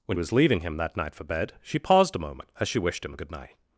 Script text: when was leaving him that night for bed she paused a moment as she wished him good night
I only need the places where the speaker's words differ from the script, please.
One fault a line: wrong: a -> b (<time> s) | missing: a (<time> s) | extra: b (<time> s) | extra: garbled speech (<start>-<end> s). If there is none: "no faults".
no faults